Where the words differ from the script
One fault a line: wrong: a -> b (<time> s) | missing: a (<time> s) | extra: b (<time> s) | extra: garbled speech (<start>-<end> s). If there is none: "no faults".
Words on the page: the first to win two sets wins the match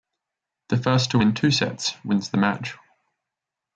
no faults